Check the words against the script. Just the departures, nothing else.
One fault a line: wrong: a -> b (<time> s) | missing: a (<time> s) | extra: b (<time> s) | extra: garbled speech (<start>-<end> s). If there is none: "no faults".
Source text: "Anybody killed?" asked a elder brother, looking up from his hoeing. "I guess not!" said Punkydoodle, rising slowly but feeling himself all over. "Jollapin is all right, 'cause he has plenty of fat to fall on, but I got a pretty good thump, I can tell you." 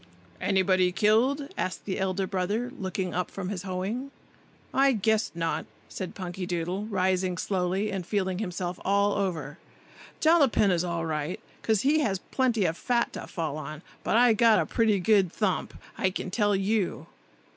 wrong: a -> the (1.9 s)
wrong: but -> and (7.9 s)